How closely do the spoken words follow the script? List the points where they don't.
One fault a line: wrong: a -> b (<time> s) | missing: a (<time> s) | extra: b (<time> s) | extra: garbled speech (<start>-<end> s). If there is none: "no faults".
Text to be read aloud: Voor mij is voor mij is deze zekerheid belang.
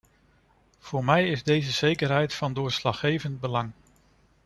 wrong: voor mij is deze zekerheid -> deze zekerheid van doorslaggevend (1.4 s)